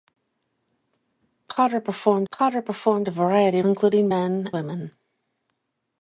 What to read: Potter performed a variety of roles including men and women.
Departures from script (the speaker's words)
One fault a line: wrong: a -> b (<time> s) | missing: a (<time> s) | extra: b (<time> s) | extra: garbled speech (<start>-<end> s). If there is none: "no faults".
extra: potter performed (2.3 s)
missing: of roles (3.6 s)
missing: and (4.5 s)